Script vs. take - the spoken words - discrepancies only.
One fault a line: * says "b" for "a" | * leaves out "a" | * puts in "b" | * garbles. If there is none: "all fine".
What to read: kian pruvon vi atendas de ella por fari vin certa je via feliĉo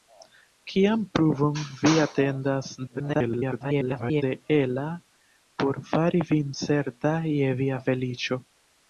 * garbles